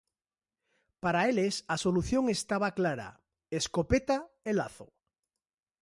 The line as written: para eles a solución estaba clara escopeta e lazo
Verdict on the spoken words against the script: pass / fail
pass